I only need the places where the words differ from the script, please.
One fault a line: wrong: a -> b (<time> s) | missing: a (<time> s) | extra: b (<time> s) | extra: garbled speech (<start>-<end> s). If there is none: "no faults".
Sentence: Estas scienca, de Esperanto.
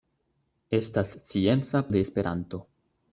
no faults